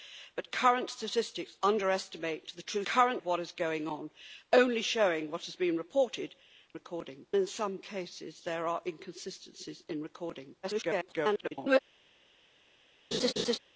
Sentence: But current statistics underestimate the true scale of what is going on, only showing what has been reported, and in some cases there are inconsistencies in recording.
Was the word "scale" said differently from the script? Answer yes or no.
yes